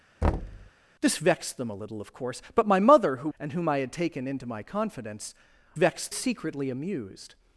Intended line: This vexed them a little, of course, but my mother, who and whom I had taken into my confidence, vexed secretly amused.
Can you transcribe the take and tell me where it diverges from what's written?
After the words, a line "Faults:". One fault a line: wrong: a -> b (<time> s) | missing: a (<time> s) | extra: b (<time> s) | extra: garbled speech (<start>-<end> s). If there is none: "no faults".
This vexed them a little, of course, but my mother, who and whom I had taken into my confidence, vexed secretly amused.
Faults:
no faults